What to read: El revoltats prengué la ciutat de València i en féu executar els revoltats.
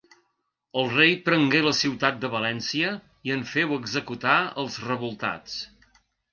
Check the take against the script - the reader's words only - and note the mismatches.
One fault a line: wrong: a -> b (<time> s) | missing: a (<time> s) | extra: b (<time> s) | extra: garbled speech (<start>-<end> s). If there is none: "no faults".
wrong: revoltats -> rei (0.9 s)